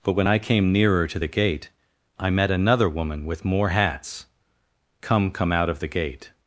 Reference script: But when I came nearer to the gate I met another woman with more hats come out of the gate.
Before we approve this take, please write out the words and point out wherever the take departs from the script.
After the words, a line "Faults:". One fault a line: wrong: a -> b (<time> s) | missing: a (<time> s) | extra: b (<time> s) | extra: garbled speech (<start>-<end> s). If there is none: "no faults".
But when I came nearer to the gate I met another woman with more hats come come out of the gate.
Faults:
extra: come (5.3 s)